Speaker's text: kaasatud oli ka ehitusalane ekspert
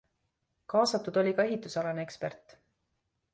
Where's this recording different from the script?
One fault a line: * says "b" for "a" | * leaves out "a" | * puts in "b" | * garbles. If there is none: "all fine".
all fine